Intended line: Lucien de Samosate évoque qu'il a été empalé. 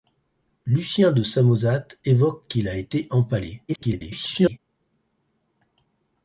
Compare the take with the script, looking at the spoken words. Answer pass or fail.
fail